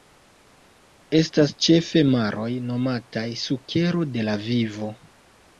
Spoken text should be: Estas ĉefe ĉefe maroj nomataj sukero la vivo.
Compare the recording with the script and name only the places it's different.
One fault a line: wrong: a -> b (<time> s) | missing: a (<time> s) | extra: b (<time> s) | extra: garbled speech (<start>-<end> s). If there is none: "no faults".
missing: ĉefe (2.0 s)
extra: de (4.2 s)